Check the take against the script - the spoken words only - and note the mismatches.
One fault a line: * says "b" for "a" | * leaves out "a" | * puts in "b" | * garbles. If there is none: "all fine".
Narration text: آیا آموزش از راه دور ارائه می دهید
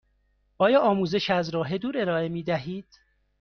all fine